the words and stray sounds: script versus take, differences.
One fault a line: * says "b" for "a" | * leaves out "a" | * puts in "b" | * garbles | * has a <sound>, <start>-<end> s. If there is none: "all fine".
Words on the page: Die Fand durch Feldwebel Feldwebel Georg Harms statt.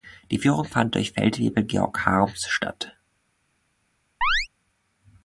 * puts in "Führung"
* leaves out "Feldwebel"
* has a chirp, 4.2-4.5 s